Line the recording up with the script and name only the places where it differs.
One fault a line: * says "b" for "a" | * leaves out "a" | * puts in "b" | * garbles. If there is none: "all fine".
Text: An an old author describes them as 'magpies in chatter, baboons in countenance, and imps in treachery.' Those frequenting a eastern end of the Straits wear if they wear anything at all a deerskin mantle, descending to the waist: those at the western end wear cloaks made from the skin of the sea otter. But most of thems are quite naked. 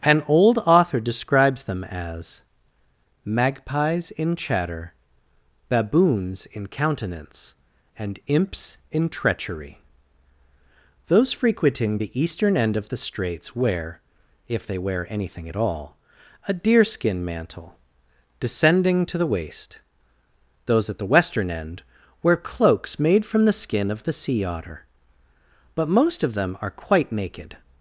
* leaves out "an"
* says "the" for "a"
* says "them" for "thems"